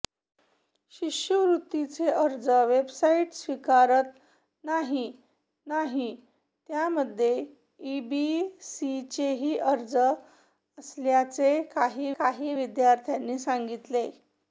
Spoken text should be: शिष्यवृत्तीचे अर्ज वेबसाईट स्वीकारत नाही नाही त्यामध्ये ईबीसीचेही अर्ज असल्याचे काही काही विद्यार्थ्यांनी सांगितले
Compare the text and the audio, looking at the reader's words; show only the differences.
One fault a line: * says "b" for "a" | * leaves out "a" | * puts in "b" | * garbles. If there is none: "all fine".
all fine